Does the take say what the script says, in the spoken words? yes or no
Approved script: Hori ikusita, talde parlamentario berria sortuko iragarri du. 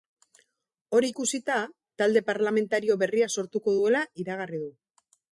no